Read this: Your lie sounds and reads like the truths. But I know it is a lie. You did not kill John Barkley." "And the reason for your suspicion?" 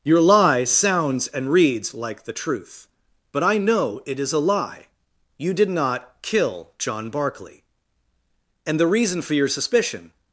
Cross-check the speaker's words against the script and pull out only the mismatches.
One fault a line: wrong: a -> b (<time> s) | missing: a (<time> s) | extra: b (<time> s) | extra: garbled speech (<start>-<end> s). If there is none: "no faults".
wrong: truths -> truth (2.3 s)